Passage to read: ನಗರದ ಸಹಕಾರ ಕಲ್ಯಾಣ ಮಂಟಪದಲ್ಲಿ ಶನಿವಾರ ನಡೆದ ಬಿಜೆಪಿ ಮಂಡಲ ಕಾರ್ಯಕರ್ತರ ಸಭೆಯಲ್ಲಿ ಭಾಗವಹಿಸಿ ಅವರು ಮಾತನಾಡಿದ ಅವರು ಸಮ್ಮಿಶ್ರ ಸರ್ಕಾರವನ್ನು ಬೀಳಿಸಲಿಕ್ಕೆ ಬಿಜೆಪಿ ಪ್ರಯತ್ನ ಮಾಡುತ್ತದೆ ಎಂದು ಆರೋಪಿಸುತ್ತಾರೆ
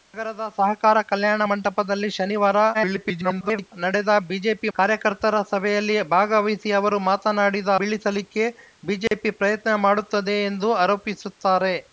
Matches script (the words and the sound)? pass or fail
fail